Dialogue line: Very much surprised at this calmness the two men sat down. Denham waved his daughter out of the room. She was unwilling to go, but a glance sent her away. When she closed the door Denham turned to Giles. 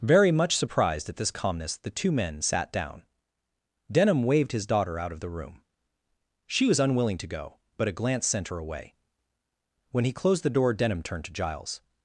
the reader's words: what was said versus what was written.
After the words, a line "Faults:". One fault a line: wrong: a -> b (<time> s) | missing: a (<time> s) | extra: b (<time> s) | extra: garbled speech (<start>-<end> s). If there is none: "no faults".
Very much surprised at this calmness the two men sat down. Denham waved his daughter out of the room. She was unwilling to go, but a glance sent her away. When he closed the door Denham turned to Giles.
Faults:
wrong: she -> he (10.0 s)